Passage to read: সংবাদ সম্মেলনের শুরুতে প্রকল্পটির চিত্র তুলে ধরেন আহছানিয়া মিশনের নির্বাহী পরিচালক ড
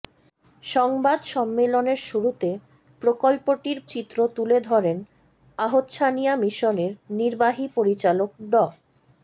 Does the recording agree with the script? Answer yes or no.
yes